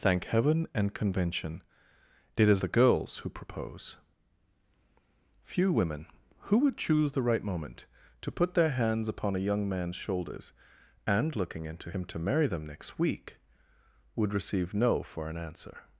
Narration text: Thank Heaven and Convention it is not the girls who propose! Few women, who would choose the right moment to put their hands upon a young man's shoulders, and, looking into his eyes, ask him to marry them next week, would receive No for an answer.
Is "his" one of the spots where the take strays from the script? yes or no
yes